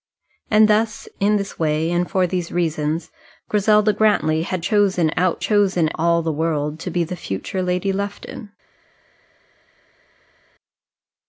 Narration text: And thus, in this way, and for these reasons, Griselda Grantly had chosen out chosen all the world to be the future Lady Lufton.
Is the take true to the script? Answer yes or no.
yes